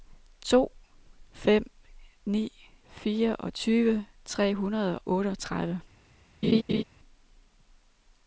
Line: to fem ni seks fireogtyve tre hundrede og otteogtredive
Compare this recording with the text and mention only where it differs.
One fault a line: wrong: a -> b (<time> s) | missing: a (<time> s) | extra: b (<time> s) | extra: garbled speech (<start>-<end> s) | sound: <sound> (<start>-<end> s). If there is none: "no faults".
missing: seks (2.7 s)
missing: og (5.0 s)
sound: laugh (6.4-6.8 s)